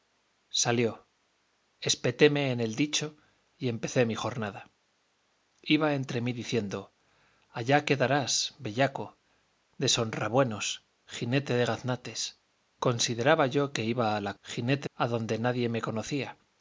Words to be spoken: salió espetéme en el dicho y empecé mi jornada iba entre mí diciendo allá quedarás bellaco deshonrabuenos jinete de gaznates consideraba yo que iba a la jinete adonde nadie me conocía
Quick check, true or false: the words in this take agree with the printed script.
true